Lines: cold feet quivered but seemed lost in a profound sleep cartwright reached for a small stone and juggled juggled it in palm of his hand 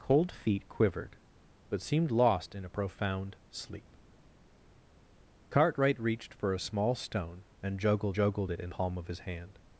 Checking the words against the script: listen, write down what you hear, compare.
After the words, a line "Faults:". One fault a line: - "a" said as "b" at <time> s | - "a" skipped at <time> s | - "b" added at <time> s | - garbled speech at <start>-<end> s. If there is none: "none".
cold feet quivered but seemed lost in a profound sleep cartwright reached for a small stone and juggled juggled it in palm of his hand
Faults:
none